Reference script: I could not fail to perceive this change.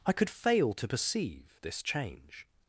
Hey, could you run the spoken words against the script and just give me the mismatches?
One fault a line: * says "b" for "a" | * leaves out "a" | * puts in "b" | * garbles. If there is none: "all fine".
* leaves out "not"